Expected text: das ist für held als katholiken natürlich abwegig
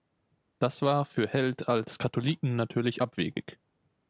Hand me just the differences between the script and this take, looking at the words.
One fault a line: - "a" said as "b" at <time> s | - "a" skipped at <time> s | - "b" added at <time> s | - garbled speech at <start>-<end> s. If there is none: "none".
- "ist" said as "war" at 0.8 s